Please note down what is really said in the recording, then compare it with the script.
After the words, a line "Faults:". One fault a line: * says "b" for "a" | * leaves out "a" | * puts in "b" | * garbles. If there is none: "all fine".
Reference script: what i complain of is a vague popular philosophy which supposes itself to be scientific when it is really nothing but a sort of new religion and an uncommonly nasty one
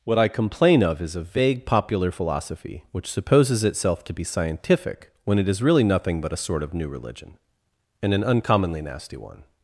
what i complain of is a vague popular philosophy which supposes itself to be scientific when it is really nothing but a sort of new religion and an uncommonly nasty one
Faults:
all fine